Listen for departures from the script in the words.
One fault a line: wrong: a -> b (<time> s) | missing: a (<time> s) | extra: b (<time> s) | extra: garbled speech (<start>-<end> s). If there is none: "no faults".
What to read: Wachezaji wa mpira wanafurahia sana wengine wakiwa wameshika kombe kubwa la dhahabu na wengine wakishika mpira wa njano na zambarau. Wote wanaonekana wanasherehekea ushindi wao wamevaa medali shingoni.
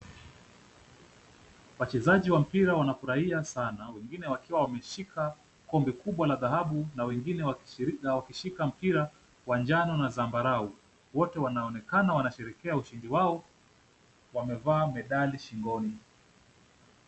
no faults